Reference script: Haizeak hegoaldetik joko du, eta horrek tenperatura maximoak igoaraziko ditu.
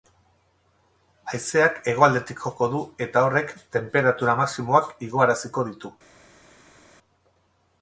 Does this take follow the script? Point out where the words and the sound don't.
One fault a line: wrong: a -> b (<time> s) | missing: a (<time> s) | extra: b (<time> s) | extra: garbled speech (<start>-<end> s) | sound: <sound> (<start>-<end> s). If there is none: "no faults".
no faults